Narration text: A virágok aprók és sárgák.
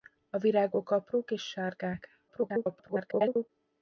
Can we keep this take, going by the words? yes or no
no